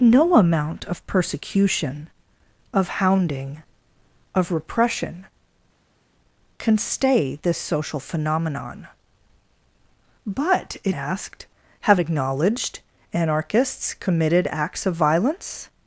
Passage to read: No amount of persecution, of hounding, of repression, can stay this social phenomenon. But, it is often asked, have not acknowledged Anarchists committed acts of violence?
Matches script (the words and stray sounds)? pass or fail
fail